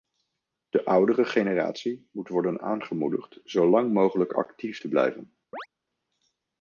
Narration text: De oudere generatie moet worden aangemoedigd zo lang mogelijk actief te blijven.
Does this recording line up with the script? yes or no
yes